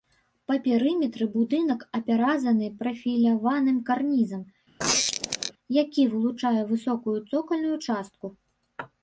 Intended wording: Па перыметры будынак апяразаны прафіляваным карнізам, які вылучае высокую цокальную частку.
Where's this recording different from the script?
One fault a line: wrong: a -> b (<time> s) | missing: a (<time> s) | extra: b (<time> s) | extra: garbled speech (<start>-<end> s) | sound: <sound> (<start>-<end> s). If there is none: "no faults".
sound: squeak (4.8-5.5 s)